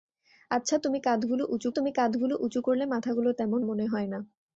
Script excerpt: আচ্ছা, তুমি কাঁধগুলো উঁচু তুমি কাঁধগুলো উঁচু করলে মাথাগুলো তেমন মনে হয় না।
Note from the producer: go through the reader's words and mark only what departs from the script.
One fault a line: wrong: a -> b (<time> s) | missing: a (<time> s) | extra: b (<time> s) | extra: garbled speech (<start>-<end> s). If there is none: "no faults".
no faults